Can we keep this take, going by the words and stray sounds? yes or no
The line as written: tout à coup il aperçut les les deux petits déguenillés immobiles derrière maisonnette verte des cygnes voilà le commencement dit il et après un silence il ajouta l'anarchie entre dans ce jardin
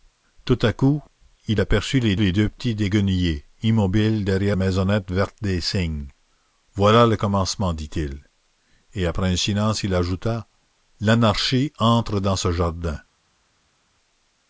yes